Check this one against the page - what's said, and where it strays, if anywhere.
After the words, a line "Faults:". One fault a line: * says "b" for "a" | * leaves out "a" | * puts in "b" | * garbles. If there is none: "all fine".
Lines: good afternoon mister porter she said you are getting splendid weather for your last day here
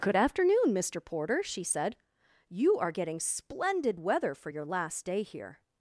good afternoon mister porter she said you are getting splendid weather for your last day here
Faults:
all fine